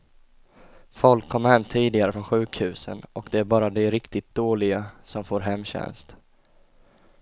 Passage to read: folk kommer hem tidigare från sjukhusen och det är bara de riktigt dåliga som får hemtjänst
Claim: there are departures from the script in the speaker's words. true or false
false